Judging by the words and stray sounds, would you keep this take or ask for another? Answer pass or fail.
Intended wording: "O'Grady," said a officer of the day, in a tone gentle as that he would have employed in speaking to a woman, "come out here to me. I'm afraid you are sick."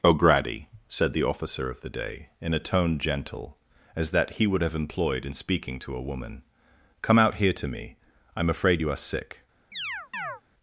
fail